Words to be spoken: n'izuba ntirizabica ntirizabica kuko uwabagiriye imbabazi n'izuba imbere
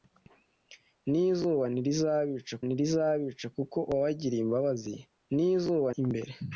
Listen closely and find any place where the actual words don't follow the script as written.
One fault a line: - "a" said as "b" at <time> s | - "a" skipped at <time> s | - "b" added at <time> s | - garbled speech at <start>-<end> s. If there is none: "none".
none